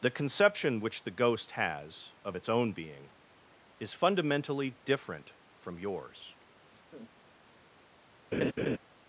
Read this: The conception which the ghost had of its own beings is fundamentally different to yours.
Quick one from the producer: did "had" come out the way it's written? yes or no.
no